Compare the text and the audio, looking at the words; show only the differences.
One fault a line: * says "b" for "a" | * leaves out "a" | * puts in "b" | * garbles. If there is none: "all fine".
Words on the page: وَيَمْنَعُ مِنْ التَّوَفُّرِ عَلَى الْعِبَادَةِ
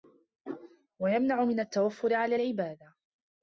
all fine